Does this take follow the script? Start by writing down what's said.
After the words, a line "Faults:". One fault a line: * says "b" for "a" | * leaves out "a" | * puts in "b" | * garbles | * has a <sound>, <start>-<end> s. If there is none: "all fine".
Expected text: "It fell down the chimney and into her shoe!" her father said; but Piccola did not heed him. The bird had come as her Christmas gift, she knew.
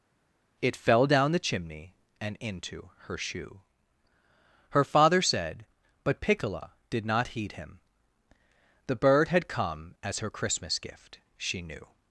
"It fell down the chimney and into her shoe!" her father said; but Piccola did not heed him. The bird had come as her Christmas gift, she knew.
Faults:
all fine